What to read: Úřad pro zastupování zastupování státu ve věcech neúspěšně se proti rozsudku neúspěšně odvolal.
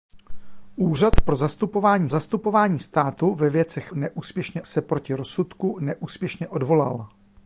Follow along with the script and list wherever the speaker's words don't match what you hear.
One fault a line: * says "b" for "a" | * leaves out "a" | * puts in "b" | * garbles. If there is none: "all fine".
all fine